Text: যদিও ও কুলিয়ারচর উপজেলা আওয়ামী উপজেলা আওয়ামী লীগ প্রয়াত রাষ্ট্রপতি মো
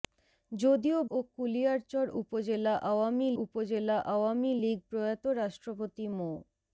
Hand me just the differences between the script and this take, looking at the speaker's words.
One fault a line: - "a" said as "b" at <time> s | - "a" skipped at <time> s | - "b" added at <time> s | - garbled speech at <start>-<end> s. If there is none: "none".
none